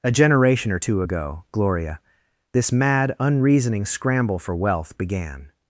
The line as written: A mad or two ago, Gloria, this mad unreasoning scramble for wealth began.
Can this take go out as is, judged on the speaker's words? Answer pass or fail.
fail